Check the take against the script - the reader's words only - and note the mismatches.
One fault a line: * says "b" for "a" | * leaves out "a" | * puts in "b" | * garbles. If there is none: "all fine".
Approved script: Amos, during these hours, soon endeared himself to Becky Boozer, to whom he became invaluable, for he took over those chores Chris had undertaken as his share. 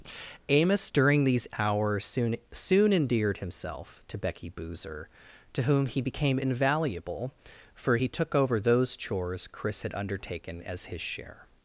* puts in "soon"